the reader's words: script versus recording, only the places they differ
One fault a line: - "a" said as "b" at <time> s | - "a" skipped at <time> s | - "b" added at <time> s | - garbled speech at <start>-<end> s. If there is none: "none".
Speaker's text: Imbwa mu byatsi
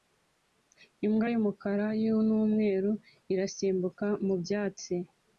- "y'umukara n'umweru irasimbuka" added at 1.3 s